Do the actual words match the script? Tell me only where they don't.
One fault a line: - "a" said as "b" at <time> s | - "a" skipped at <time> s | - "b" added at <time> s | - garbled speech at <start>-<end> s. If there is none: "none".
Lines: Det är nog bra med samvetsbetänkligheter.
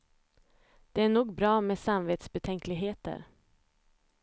none